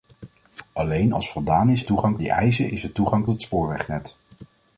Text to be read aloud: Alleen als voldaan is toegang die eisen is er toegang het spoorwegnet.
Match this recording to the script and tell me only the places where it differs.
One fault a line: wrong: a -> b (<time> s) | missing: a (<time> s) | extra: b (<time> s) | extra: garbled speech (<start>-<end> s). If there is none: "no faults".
no faults